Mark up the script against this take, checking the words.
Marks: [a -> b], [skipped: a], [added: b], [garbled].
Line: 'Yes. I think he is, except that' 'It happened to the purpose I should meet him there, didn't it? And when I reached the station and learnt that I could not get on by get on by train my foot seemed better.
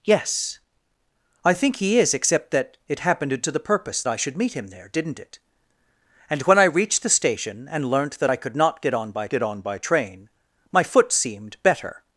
'Yes. I think he is, except that' 'It happened to the purpose I should meet him there, didn't it? And when I reached the station and learnt that I could not get on by get on by train my foot seemed better.